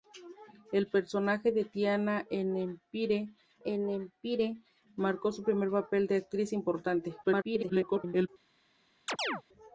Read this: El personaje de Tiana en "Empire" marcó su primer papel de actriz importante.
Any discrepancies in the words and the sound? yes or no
yes